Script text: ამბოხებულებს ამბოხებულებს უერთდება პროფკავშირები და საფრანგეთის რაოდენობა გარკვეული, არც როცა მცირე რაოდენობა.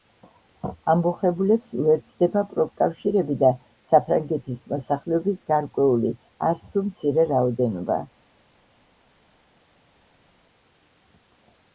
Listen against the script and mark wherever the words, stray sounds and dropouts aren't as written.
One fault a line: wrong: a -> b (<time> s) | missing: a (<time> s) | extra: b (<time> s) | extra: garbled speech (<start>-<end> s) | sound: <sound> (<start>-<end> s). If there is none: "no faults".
missing: ამბოხებულებს (1.8 s)
wrong: რაოდენობა -> მოსახლეობის (4.7 s)
wrong: როცა -> თუ (6.7 s)